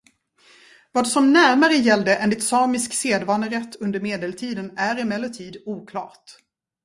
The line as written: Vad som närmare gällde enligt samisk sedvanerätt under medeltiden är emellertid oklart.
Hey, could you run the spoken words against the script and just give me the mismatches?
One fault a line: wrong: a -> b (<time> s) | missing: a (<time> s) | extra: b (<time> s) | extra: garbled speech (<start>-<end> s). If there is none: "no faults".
no faults